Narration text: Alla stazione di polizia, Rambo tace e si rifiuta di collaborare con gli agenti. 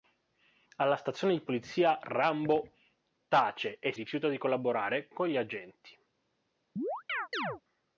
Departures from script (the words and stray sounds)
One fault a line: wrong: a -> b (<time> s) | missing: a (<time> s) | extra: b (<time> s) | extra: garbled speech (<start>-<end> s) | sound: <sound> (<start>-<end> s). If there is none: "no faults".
missing: si (3.9 s)
sound: chirp (6.8-7.6 s)